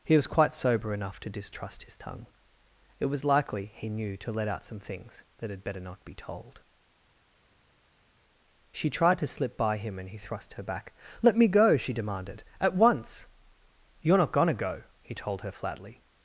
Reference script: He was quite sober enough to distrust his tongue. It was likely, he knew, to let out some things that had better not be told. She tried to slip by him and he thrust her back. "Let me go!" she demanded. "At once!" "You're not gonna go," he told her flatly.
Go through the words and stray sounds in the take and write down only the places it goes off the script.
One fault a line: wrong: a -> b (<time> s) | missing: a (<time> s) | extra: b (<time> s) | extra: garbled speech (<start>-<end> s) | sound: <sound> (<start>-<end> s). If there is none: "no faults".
no faults